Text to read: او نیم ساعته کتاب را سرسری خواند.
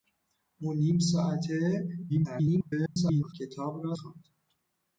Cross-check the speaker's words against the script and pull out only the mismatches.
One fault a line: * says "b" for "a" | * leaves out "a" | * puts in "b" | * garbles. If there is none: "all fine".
* garbles
* leaves out "سرسری"